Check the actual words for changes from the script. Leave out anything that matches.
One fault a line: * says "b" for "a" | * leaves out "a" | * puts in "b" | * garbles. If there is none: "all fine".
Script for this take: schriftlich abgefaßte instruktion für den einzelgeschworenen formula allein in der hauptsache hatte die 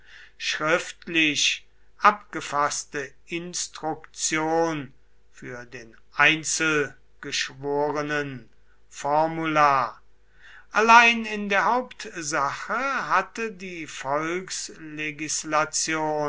all fine